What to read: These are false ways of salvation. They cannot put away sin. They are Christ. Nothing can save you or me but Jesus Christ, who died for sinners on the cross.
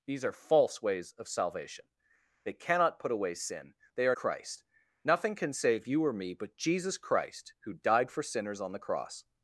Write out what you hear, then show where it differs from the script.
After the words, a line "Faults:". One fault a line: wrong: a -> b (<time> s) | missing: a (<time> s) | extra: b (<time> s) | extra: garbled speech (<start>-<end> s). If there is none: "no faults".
These are false ways of salvation. They cannot put away sin. They are Christ. Nothing can save you or me but Jesus Christ, who died for sinners on the cross.
Faults:
no faults